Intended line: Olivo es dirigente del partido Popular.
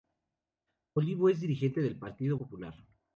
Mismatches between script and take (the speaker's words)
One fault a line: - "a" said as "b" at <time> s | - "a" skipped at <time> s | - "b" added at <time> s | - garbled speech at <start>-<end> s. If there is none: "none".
none